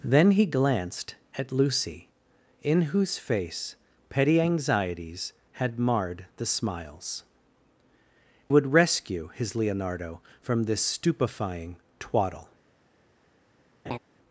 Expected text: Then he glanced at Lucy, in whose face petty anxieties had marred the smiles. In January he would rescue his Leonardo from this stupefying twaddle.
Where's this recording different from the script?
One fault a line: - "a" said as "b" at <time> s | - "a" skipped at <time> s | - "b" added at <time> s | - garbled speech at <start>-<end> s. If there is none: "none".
- "In January he" skipped at 7.2 s